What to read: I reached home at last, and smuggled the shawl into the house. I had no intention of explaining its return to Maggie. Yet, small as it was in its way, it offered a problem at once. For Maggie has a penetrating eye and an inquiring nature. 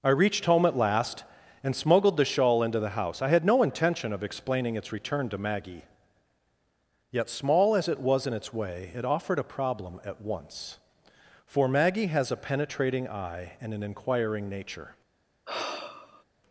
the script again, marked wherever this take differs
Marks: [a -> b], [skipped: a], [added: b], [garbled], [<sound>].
I reached home at last, and smuggled the shawl into the house. I had no intention of explaining its return to Maggie. Yet, small as it was in its way, it offered a problem at once. For Maggie has a penetrating eye and an inquiring nature. [sigh]